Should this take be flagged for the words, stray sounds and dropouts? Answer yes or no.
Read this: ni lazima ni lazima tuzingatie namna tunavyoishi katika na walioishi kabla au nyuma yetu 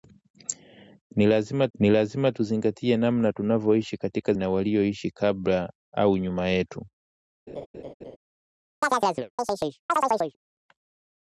yes